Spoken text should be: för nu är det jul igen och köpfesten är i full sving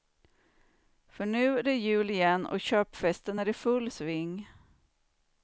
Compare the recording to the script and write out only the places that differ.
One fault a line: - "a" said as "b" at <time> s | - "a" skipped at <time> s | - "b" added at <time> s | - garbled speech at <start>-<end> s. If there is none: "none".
none